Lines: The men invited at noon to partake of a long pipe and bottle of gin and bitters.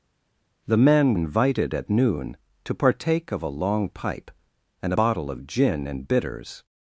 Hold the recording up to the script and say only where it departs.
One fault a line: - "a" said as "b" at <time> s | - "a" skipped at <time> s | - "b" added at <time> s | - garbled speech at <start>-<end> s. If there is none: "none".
none